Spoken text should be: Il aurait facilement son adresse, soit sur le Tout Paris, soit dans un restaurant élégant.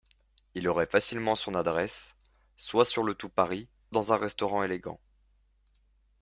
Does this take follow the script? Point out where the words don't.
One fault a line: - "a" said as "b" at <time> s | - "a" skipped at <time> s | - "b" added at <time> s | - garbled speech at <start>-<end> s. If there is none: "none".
- "soit" skipped at 3.7 s